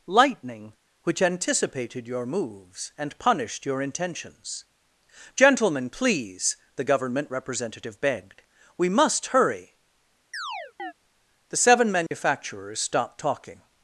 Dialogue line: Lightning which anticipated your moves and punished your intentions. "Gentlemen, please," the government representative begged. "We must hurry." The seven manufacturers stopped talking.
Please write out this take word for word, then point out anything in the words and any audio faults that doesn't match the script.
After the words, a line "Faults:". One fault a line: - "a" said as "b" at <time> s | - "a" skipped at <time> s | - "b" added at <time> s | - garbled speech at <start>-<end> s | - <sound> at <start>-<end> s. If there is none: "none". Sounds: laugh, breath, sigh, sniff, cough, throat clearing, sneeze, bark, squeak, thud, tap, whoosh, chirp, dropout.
Lightning which anticipated your moves and punished your intentions. "Gentlemen, please," the government representative begged. "We must hurry." The seven manufacturers stopped talking.
Faults:
- chirp at 10.3-10.9 s
- dropout at 12.1-12.1 s